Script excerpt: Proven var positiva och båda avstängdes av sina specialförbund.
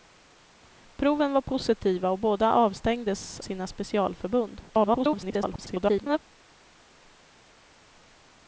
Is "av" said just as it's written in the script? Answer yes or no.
no